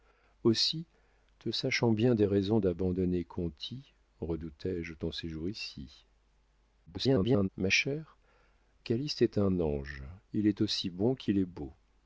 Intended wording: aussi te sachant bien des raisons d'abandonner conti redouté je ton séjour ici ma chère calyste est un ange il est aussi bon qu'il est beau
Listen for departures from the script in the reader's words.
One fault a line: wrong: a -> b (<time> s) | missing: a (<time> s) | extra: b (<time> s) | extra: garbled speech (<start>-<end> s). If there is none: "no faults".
extra: garbled speech (6.9-7.5 s)